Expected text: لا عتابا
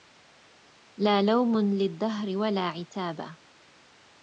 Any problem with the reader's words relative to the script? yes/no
yes